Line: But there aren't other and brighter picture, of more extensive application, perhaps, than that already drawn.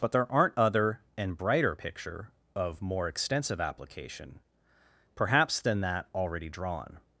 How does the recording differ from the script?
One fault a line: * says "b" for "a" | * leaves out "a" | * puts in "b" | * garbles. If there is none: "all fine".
all fine